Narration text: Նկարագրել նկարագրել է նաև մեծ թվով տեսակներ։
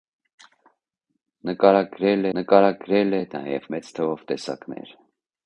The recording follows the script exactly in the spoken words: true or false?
true